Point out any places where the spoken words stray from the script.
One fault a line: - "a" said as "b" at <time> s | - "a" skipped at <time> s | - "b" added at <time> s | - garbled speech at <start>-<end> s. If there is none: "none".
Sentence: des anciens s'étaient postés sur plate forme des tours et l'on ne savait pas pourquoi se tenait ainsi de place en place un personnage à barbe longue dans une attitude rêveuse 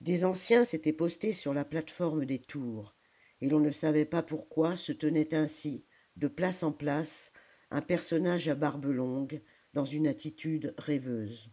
- "la" added at 1.5 s